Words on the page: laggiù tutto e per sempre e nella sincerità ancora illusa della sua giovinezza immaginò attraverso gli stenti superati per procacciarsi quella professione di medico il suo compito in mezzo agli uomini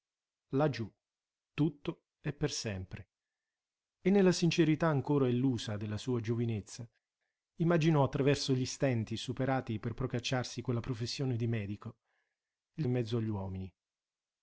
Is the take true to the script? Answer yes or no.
no